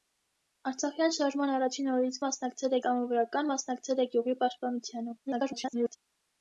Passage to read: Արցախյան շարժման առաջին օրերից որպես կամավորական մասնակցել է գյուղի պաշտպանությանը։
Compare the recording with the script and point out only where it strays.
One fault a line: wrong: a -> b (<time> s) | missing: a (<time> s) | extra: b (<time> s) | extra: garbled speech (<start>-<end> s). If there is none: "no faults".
wrong: որպես -> մասնակցել (2.2 s)
extra: garbled speech (5.3-6.0 s)